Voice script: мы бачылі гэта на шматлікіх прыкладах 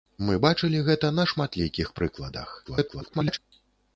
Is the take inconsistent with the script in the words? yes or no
yes